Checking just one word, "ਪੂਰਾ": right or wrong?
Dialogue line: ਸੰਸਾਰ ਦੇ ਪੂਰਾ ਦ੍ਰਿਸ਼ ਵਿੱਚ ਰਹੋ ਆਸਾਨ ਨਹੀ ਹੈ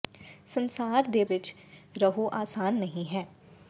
wrong